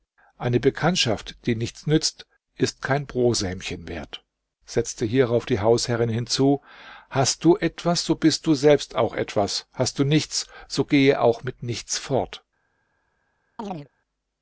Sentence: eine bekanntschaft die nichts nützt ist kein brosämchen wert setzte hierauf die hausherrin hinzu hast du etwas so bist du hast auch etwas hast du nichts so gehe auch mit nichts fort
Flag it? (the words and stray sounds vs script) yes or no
yes